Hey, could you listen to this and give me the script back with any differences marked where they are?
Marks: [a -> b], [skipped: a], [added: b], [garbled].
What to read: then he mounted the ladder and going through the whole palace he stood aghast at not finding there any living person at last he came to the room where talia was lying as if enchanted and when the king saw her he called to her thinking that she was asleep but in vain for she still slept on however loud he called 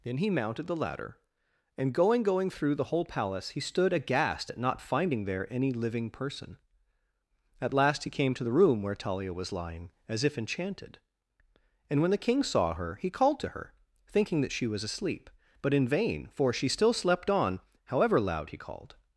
then he mounted the ladder and going [added: going] through the whole palace he stood aghast at not finding there any living person at last he came to the room where talia was lying as if enchanted and when the king saw her he called to her thinking that she was asleep but in vain for she still slept on however loud he called